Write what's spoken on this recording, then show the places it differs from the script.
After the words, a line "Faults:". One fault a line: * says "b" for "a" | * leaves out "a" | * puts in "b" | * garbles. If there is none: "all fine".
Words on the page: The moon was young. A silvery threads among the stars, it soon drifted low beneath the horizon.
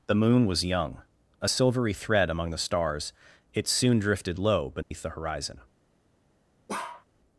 The moon was young. A silvery thread among the stars, it soon drifted low beneath the horizon.
Faults:
* says "thread" for "threads"